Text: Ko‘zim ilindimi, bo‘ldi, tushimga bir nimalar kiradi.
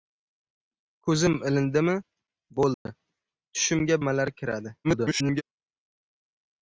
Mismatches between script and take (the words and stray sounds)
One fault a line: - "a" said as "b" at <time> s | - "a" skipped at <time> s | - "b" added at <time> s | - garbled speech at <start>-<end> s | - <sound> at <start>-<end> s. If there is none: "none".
- dropout at 2.7-2.9 s
- "bir" skipped at 4.0 s
- garbled speech at 4.8-5.4 s